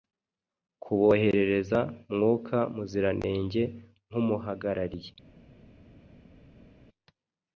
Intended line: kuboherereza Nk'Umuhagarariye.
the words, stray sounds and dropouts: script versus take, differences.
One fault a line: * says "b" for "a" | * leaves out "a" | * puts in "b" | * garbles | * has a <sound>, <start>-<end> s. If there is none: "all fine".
* puts in "Mwuka Muziranenge"